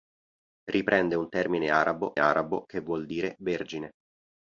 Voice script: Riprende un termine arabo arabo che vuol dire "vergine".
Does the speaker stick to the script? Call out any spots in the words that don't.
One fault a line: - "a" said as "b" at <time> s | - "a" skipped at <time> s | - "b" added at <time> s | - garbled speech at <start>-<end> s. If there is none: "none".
none